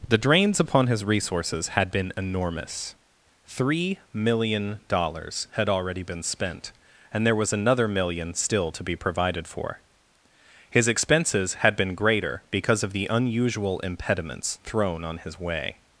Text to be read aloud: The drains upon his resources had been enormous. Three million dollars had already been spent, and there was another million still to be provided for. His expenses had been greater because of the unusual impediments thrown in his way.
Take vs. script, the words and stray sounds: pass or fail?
fail